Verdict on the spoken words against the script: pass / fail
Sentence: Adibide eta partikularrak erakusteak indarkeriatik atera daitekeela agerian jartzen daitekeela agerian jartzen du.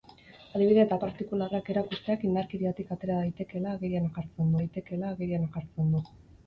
pass